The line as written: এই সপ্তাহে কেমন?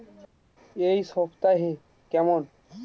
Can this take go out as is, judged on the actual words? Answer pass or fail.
pass